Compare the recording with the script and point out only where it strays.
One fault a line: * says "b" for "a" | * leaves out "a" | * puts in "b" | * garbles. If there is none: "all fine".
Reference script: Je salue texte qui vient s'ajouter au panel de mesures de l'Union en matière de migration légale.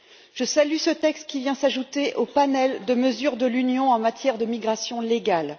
* puts in "ce"